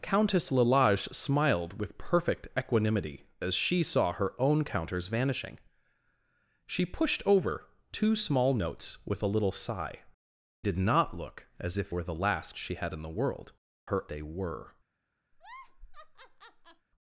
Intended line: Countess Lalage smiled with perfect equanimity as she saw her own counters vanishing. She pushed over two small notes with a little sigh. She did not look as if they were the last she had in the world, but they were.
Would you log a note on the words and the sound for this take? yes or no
yes